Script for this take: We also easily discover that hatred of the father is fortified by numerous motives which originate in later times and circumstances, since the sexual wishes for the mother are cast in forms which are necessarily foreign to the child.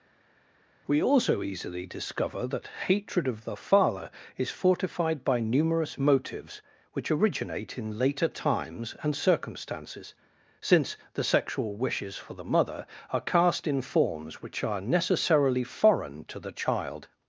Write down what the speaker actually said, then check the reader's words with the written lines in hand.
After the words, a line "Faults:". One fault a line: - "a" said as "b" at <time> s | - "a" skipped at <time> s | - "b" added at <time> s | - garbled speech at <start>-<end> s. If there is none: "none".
We also easily discover that hatred of the father is fortified by numerous motives which originate in later times and circumstances, since the sexual wishes for the mother are cast in forms which are necessarily foreign to the child.
Faults:
none